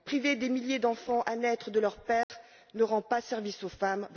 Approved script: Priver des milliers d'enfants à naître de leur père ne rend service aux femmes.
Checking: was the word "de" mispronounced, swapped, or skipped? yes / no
no